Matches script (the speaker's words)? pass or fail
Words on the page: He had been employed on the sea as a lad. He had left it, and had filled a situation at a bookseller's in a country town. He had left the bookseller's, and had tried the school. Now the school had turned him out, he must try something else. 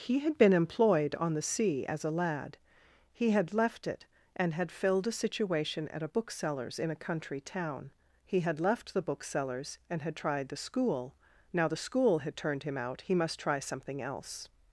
pass